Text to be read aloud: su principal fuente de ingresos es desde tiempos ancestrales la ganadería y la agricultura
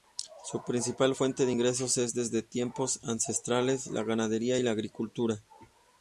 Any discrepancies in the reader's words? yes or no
no